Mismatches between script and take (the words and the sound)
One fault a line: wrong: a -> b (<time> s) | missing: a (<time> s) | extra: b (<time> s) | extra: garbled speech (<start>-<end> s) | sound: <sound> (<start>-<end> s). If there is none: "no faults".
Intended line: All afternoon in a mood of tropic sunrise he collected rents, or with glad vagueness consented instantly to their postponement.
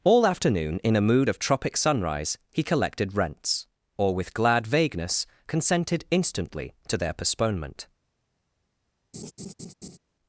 sound: laugh (9.1-10.0 s)